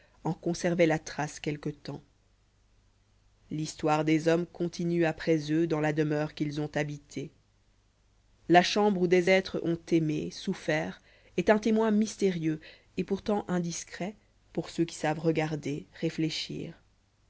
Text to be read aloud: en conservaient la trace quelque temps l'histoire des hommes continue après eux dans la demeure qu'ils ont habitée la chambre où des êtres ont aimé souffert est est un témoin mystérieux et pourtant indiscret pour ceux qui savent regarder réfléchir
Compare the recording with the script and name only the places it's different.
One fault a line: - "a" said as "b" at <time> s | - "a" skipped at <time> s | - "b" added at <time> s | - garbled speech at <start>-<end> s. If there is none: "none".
- "est" skipped at 11.5 s